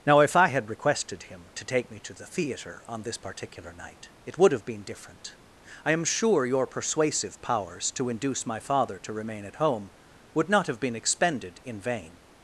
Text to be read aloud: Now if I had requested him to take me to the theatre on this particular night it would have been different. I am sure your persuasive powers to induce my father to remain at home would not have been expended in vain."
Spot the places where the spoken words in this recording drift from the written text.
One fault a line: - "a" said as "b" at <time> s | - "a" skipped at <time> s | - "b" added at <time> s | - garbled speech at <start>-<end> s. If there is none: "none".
none